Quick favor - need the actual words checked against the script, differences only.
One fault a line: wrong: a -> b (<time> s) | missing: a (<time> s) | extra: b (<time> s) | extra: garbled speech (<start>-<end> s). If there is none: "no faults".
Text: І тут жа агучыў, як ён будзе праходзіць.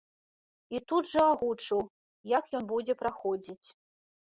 no faults